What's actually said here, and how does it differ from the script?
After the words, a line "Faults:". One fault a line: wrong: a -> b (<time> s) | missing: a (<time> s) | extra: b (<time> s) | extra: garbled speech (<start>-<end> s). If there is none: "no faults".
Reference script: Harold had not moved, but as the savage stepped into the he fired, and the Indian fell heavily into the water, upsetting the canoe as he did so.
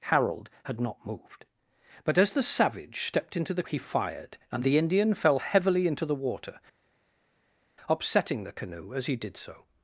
Harold had not moved, but as the savage stepped into the he fired, and the Indian fell heavily into the water, upsetting the canoe as he did so.
Faults:
no faults